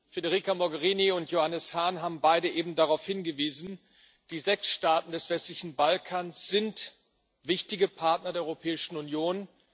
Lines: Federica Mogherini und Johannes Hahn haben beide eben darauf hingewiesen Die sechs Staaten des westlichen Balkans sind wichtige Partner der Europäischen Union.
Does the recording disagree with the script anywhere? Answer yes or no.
no